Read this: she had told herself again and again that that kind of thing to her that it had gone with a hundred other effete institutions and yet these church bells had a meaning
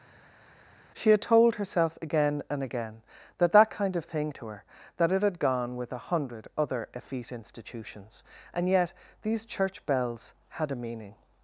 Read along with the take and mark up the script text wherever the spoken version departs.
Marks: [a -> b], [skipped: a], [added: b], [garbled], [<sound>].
she had told herself again and again that that kind of thing to her that it had gone with a hundred other effete institutions and yet these church bells had a meaning